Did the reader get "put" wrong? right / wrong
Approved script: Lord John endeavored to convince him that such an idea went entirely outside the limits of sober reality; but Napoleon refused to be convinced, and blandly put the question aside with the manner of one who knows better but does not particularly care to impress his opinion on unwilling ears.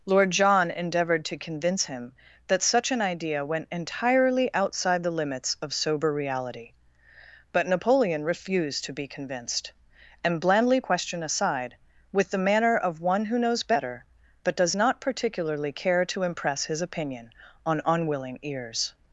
wrong